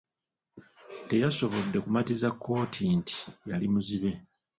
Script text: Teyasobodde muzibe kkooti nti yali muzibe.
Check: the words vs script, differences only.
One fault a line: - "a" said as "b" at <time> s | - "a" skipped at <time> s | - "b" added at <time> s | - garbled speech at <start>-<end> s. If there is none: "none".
- "muzibe" said as "kumatiza" at 1.8 s